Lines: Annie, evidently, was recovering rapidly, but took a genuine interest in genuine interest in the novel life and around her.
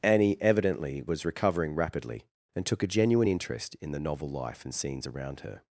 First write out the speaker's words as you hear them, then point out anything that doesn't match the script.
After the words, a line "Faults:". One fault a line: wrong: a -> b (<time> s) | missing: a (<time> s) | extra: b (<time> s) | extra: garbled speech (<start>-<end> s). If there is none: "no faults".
Annie, evidently, was recovering rapidly, and took a genuine interest in the novel life and scenes around her.
Faults:
wrong: but -> and (2.6 s)
missing: genuine interest in (3.9 s)
extra: scenes (4.7 s)